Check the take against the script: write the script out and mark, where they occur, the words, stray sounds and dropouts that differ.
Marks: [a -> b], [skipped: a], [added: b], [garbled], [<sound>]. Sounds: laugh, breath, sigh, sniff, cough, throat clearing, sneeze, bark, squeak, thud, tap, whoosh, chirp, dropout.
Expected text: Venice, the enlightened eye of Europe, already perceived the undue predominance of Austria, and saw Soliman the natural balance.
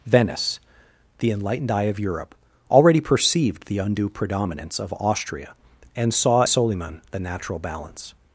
Venice, the enlightened eye of Europe, already perceived the undue predominance of Austria, and saw Soliman the natural balance.